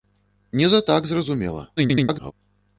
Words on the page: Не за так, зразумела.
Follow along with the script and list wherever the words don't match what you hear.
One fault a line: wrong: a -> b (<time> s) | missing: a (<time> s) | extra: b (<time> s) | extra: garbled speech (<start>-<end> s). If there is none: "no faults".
extra: garbled speech (1.8-2.3 s)